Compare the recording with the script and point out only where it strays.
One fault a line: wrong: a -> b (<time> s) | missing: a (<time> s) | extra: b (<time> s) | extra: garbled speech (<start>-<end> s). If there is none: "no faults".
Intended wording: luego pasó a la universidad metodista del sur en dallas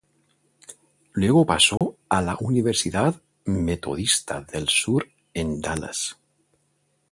no faults